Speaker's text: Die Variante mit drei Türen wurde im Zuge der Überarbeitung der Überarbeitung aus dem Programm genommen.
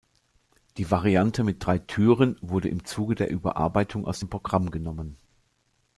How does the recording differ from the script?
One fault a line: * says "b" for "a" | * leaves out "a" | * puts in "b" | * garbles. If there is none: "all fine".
* leaves out "der Überarbeitung"